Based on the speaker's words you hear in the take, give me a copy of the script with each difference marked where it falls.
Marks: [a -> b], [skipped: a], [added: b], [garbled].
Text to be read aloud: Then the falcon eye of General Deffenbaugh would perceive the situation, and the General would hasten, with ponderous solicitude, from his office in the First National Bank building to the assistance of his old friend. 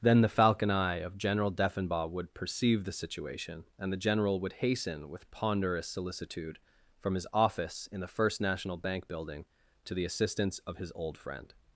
Then the falcon eye of General Deffenbaugh would perceive the situation, and the General would hasten, with ponderous solicitude, from his office in the First National Bank building to the assistance of his old friend.